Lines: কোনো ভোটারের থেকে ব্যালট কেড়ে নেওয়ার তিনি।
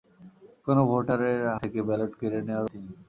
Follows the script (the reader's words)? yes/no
yes